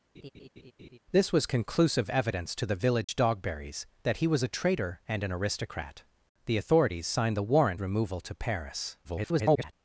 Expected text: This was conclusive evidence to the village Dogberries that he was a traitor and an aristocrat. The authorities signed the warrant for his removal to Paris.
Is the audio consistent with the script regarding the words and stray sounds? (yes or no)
no